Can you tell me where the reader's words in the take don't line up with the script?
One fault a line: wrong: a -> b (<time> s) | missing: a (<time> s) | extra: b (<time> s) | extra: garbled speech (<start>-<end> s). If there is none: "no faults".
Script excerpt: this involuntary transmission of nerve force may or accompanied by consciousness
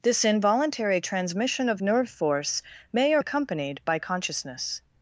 no faults